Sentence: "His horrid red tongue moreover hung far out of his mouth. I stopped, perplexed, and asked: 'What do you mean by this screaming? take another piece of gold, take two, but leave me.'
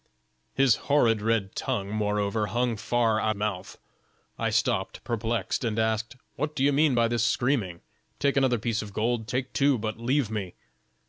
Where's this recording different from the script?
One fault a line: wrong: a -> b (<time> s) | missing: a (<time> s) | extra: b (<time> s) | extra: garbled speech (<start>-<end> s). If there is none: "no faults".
missing: of his (3.4 s)